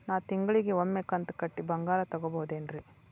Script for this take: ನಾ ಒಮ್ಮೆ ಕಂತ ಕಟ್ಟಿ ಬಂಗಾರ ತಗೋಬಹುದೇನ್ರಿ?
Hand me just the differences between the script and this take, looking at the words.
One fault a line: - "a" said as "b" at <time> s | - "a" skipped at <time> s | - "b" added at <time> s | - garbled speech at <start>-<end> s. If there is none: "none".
- "ತಿಂಗಳಿಗ" added at 0.2 s